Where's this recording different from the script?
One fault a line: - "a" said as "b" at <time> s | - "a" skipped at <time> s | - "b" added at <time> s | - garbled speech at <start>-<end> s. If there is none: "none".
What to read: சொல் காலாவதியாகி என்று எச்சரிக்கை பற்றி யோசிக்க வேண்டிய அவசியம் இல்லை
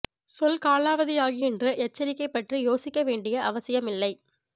none